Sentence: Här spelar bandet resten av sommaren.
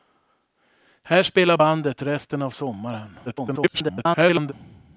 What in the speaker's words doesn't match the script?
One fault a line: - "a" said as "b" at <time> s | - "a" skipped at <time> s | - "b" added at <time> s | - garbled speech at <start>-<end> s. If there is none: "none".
- garbled speech at 3.3-4.5 s